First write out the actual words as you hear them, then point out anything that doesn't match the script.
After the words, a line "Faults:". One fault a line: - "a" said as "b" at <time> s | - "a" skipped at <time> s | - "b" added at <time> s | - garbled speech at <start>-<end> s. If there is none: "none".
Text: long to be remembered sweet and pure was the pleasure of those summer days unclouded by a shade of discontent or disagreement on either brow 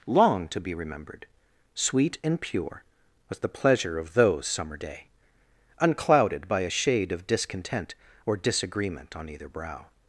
long to be remembered sweet and pure was the pleasure of those summer day unclouded by a shade of discontent or disagreement on either brow
Faults:
- "days" said as "day" at 4.7 s